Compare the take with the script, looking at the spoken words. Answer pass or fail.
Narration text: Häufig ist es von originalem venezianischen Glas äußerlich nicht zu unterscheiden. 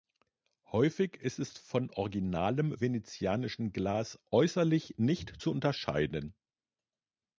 pass